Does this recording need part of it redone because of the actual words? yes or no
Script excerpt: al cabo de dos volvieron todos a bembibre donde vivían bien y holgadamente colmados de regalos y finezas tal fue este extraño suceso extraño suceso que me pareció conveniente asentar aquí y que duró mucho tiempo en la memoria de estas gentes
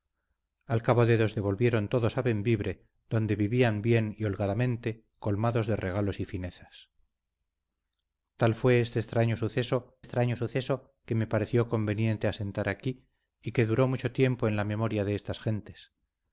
no